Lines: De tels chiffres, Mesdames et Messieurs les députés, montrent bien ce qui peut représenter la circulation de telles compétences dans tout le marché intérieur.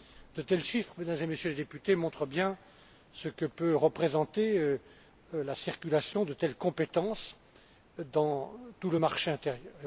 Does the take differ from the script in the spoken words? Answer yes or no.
yes